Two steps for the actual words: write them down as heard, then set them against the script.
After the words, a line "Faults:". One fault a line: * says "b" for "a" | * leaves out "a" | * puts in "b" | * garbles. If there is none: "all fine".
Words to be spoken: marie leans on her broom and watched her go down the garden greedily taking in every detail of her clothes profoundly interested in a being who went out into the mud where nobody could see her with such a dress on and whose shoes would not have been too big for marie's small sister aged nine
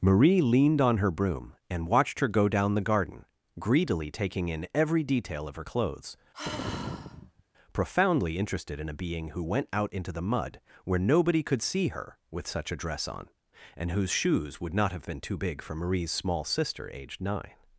marie leaned on her broom and watched her go down the garden greedily taking in every detail of her clothes profoundly interested in a being who went out into the mud where nobody could see her with such a dress on and whose shoes would not have been too big for marie's small sister aged nine
Faults:
* says "leaned" for "leans"